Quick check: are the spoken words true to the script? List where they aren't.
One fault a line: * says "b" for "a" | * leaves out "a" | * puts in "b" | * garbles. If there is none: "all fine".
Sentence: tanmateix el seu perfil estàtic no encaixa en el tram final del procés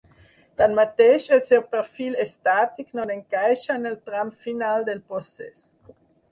all fine